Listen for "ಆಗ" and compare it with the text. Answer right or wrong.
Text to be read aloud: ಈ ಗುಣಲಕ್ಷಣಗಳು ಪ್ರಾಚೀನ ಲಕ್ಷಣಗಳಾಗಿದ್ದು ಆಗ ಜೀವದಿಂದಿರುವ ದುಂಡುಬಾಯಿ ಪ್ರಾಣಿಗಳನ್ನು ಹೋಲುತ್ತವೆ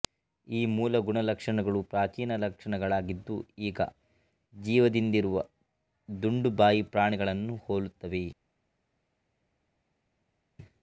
wrong